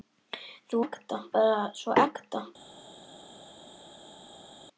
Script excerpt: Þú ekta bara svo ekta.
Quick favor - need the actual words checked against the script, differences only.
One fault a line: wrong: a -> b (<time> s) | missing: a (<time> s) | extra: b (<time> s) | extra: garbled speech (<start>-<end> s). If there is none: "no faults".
no faults